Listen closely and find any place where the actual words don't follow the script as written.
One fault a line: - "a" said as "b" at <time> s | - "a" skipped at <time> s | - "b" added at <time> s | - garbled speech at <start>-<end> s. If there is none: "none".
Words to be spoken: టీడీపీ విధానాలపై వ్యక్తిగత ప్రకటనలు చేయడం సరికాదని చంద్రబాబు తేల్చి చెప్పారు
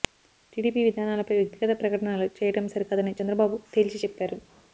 none